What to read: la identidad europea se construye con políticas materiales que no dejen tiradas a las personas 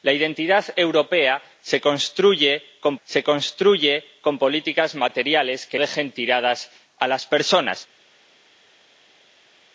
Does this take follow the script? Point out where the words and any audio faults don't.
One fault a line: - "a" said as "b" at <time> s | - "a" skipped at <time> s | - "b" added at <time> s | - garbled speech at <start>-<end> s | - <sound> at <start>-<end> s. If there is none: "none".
- "se construye con" added at 3.0 s
- "no" skipped at 5.8 s